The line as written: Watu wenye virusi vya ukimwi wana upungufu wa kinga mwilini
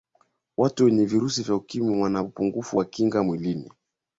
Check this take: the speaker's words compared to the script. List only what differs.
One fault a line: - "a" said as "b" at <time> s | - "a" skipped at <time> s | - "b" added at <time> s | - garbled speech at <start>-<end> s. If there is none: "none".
none